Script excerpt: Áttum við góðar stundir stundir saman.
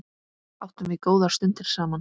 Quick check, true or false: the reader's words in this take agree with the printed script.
false